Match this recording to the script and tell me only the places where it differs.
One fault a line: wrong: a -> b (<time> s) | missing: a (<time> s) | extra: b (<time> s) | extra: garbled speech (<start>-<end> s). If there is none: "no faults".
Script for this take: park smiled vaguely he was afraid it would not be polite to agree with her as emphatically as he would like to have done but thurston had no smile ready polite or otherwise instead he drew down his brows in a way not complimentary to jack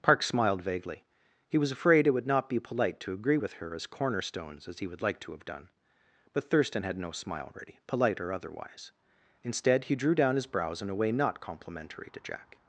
wrong: emphatically -> cornerstones (3.9 s)